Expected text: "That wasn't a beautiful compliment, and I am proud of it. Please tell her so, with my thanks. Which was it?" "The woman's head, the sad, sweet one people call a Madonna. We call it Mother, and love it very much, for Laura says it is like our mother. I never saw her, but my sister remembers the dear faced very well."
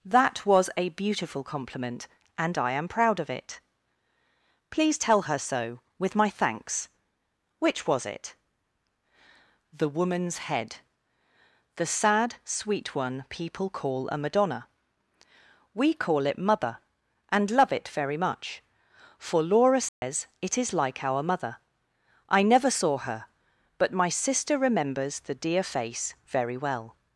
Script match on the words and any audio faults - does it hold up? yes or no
no